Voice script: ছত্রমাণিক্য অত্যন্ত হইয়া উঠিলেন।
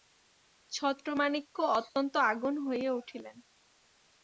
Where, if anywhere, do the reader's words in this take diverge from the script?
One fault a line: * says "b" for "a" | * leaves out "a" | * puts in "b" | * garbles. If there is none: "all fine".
* puts in "আগুন"